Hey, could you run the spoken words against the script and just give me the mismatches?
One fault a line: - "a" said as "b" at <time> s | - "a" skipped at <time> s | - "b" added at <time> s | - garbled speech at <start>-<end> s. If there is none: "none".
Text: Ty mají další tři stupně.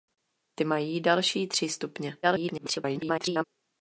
- garbled speech at 2.2-3.4 s